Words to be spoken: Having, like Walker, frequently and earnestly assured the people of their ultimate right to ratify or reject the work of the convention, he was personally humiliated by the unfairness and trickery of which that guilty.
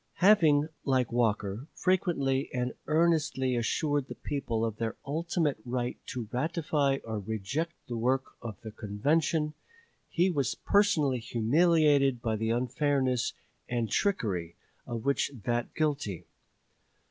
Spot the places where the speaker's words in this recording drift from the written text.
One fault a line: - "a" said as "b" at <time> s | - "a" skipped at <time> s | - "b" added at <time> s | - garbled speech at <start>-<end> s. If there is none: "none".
none